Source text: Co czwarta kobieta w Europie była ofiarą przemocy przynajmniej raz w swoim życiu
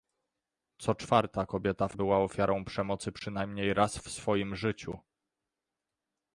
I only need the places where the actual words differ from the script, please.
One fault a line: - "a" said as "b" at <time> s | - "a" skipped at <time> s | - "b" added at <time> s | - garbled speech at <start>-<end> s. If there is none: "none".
- "Europie" skipped at 2.0 s